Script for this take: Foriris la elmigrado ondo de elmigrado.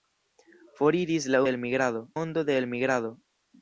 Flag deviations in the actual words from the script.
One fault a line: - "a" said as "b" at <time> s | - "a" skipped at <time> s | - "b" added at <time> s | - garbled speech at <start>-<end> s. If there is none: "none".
none